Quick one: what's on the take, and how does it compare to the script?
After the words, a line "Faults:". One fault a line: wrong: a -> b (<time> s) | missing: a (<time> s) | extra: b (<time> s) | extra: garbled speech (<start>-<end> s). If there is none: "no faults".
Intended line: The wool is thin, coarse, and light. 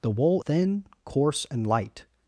The wool thin, coarse, and light.
Faults:
missing: is (0.4 s)